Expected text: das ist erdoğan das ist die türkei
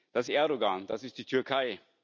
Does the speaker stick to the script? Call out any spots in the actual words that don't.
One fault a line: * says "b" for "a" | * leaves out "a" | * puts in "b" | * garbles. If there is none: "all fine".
* leaves out "ist"